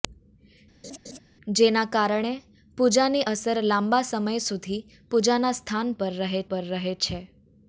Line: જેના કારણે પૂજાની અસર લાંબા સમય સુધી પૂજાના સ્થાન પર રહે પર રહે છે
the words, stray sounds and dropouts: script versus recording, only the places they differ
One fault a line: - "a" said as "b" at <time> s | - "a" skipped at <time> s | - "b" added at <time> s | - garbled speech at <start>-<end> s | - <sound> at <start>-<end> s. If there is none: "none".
- laugh at 0.8-1.2 s